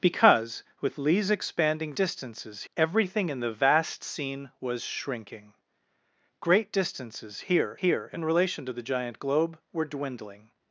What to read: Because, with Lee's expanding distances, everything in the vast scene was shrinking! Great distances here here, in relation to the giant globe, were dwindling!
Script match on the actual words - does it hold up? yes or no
yes